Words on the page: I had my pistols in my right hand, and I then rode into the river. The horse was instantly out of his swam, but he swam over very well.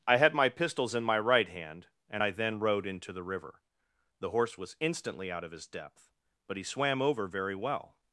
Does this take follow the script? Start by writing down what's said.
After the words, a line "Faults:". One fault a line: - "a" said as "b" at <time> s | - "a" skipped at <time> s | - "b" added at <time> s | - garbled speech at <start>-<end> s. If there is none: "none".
I had my pistols in my right hand, and I then rode into the river. The horse was instantly out of his depth, but he swam over very well.
Faults:
- "swam" said as "depth" at 5.7 s